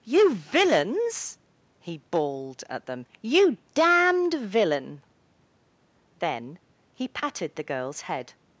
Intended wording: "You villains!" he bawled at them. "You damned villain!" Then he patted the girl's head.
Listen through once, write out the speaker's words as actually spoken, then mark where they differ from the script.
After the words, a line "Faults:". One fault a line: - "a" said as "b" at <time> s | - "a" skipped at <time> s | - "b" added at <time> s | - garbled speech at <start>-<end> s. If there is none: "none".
"You villains!" he bawled at them. "You damned villain!" Then he patted the girl's head.
Faults:
none